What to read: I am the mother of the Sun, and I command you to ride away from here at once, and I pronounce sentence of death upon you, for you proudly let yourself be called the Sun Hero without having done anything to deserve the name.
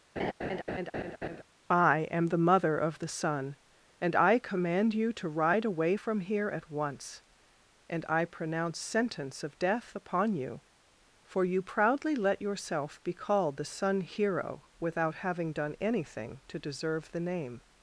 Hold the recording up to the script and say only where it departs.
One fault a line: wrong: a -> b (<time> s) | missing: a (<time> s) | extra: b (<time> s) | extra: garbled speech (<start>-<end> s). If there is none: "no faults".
no faults